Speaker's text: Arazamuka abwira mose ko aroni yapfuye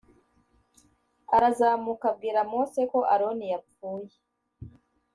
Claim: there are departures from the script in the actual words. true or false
false